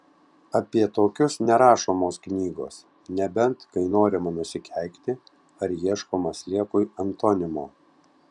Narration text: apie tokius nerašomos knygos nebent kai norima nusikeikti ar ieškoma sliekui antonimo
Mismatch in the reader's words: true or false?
false